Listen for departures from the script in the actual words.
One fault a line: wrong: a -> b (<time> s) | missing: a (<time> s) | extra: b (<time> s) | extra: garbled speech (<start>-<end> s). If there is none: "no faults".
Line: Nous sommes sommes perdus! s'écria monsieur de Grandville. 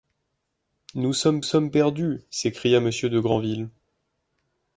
no faults